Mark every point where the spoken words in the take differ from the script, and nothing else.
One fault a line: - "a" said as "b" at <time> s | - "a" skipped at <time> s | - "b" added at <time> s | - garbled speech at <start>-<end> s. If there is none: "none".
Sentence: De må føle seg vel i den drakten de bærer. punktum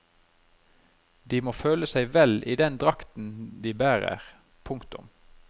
none